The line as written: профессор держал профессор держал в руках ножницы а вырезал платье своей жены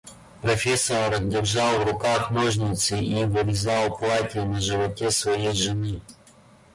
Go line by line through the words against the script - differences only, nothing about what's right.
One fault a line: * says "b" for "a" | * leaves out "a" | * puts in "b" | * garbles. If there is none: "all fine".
* leaves out "профессор держал"
* says "и" for "а"
* puts in "на животе"